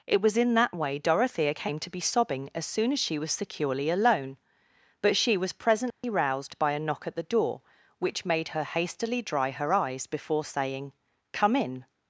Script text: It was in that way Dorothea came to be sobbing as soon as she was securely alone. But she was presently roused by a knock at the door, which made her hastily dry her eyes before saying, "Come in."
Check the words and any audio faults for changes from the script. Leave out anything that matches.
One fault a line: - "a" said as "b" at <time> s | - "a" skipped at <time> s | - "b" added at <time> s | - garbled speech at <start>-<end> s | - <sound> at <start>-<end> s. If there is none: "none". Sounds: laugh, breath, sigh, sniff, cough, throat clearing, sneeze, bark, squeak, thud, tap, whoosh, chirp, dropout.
- dropout at 5.9-6.0 s